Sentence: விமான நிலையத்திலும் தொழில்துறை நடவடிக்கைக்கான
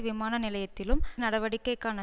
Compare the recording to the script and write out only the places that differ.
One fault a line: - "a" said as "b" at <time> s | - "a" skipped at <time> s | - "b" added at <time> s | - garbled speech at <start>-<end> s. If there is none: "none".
- "தொழில்துறை" skipped at 1.0 s